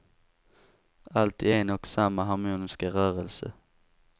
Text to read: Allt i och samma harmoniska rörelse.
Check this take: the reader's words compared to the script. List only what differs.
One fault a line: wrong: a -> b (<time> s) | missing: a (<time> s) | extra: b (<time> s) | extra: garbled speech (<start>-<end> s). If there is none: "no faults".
extra: en (1.5 s)